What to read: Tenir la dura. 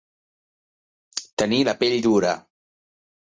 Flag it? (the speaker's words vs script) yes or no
yes